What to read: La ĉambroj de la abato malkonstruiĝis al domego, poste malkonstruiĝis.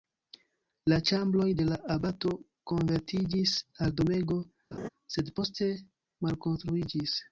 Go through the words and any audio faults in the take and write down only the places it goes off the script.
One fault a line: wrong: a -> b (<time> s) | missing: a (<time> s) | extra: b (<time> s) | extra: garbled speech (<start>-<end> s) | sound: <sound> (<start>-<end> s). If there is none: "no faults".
wrong: malkonstruiĝis -> konvertiĝis (2.7 s)
sound: laugh (4.7-4.9 s)
extra: sed (5.2 s)